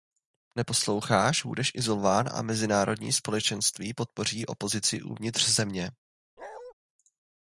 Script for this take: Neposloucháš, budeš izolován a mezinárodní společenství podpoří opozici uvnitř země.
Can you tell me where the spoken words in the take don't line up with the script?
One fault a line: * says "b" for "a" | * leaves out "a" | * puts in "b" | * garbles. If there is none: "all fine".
all fine